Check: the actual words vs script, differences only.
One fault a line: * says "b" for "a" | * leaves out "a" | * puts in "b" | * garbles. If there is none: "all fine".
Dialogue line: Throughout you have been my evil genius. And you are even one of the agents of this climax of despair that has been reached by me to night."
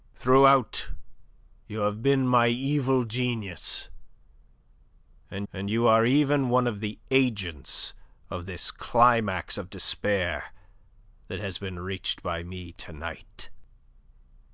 * puts in "and"